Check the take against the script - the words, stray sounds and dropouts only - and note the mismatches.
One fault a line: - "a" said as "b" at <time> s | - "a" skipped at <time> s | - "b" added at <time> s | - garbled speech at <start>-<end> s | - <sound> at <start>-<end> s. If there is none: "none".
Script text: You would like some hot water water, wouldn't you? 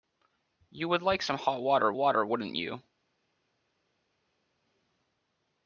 none